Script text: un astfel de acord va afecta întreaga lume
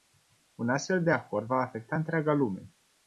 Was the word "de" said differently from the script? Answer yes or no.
no